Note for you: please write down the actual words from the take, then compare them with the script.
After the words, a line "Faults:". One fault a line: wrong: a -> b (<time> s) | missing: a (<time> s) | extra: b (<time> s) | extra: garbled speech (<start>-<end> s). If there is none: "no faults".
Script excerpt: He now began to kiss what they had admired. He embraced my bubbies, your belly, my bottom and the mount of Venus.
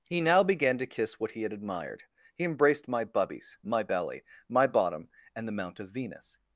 He now began to kiss what he had admired. He embraced my bubbies, my belly, my bottom and the mount of Venus.
Faults:
wrong: they -> he (1.3 s)
wrong: your -> my (3.6 s)